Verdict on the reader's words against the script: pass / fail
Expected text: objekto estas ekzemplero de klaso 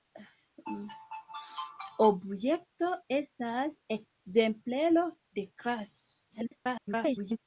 fail